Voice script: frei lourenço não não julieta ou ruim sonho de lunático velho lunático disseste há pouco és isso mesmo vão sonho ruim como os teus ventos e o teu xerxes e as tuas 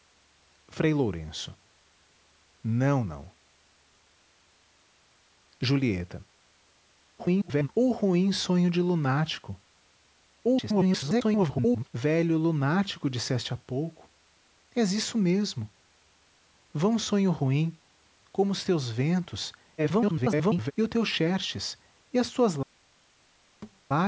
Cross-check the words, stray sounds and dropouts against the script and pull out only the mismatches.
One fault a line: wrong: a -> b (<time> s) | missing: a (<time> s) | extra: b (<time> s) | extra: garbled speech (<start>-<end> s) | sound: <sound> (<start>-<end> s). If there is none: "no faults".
extra: garbled speech (7.2-7.7 s)
extra: garbled speech (10.4-11.9 s)
extra: garbled speech (19.8-20.7 s)
sound: thud (23.6-23.8 s)